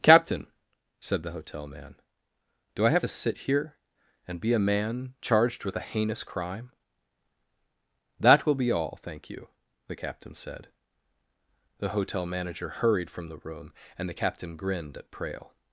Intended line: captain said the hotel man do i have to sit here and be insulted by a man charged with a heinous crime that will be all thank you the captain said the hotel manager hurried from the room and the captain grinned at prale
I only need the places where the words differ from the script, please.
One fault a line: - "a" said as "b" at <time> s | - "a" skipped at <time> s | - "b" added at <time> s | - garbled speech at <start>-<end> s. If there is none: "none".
- "insulted by" skipped at 4.5 s